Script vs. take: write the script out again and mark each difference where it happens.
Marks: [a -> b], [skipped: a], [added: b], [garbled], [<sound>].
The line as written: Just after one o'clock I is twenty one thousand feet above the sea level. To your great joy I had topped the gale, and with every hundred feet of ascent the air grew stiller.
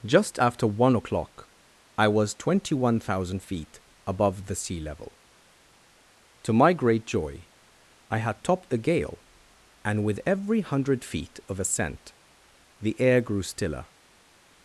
Just after one o'clock I [is -> was] twenty one thousand feet above the sea level. To [your -> my] great joy I had topped the gale, and with every hundred feet of ascent the air grew stiller.